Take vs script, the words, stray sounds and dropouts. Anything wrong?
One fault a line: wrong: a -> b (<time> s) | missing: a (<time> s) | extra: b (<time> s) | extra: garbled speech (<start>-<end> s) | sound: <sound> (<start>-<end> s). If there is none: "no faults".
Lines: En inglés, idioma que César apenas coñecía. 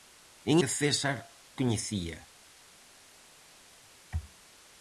missing: inglés idioma (0.6 s)
missing: apenas (1.2 s)